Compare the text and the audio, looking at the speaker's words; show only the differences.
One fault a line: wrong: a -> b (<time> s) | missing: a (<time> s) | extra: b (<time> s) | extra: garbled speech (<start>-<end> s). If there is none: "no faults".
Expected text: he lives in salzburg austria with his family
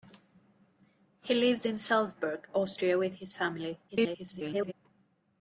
extra: garbled speech (3.9-4.7 s)